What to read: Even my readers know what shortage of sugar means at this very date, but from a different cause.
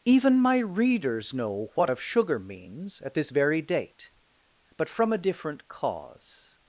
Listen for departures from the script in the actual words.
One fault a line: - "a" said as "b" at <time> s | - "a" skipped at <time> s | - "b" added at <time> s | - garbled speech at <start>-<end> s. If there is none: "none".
- "shortage" skipped at 1.9 s